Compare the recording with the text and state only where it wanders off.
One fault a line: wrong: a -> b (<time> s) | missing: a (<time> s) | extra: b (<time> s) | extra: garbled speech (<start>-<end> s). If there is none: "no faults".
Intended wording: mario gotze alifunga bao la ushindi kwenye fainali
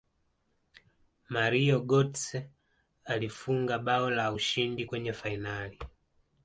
no faults